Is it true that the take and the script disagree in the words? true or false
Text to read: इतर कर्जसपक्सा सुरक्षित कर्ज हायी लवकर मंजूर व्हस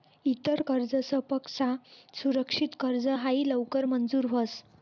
false